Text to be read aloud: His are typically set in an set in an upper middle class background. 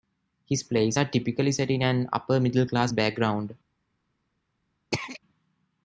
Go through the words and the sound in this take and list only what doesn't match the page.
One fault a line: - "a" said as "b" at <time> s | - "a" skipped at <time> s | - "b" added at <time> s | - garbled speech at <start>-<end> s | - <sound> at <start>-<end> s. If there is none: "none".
- "plays" added at 0.6 s
- "set in an" skipped at 2.1 s
- throat clearing at 4.9-5.2 s